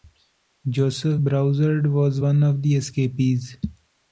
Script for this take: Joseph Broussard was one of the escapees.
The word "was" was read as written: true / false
true